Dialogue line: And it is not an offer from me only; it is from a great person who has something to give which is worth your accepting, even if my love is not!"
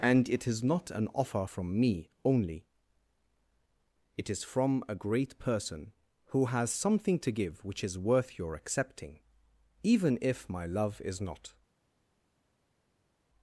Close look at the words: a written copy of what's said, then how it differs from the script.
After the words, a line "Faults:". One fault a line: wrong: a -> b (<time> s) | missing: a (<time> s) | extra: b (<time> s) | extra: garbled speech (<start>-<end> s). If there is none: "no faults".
And it is not an offer from me only; it is from a great person who has something to give which is worth your accepting, even if my love is not!"
Faults:
no faults